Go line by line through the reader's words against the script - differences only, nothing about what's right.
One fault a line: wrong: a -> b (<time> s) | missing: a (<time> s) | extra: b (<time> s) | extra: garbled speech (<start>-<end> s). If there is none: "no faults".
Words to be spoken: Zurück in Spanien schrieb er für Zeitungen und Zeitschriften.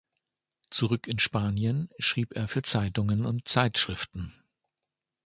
no faults